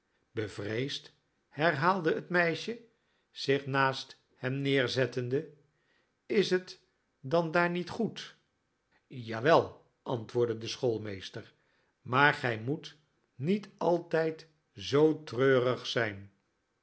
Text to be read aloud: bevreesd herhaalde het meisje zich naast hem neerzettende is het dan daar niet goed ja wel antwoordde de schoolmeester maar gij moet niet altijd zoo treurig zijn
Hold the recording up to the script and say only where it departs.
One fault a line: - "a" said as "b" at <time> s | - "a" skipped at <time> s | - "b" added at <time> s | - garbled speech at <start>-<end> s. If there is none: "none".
none